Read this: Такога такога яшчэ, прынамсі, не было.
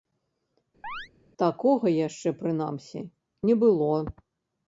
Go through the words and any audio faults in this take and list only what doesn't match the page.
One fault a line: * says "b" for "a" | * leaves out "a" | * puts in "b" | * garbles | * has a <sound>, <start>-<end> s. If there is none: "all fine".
* has a chirp, 0.8-1.1 s
* leaves out "такога"